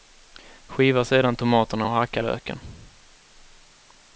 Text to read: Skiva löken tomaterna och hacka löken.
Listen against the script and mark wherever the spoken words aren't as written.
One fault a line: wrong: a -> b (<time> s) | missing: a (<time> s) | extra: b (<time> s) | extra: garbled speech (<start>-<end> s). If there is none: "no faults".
wrong: löken -> sedan (1.1 s)